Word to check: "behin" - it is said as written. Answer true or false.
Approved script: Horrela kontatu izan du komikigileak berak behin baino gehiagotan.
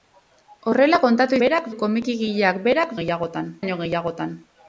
false